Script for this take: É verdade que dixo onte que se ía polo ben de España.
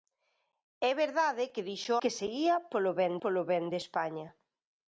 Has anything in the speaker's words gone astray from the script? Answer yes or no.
yes